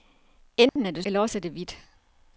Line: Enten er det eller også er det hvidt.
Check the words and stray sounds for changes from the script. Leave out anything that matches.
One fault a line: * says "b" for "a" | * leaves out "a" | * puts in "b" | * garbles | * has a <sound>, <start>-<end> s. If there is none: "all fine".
* has a dropout, 0.7-0.8 s